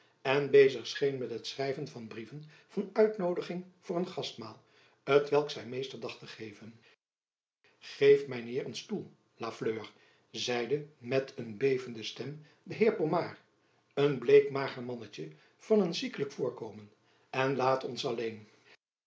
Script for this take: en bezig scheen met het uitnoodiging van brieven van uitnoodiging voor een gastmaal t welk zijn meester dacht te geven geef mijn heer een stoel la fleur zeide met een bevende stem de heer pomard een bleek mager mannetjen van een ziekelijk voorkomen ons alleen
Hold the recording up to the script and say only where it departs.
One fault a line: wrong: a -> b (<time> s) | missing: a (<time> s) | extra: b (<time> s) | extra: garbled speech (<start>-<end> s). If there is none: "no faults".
wrong: uitnoodiging -> schrijven (1.5 s)
extra: en laat (17.3 s)